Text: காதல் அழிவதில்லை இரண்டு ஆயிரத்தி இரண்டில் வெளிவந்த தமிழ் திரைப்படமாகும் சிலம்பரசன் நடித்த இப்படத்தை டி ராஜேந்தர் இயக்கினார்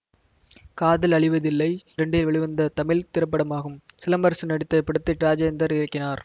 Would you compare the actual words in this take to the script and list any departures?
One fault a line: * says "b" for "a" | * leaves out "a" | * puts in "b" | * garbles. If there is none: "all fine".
* leaves out "இரண்டு ஆயிரத்தி"
* leaves out "டி"